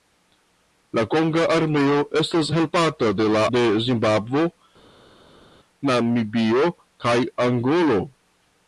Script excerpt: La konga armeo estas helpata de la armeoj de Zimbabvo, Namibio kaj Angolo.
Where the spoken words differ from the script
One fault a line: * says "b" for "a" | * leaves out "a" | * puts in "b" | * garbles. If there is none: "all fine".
* leaves out "armeoj"